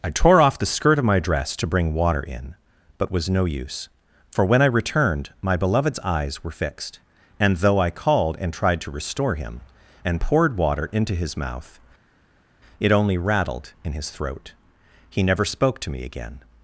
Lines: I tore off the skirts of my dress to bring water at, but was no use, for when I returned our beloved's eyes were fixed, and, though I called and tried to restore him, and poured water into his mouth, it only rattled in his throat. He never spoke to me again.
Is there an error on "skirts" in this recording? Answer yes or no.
yes